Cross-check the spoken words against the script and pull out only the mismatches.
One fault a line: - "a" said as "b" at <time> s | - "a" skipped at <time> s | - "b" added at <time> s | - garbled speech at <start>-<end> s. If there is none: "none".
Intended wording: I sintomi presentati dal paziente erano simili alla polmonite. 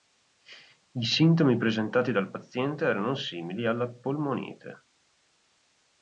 none